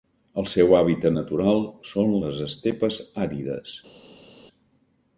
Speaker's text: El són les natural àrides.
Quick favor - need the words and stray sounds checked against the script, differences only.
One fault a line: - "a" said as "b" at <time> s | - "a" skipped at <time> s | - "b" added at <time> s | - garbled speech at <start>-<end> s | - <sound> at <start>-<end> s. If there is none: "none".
- "seu hàbitat natural" added at 0.5 s
- "natural" said as "estepes" at 2.5 s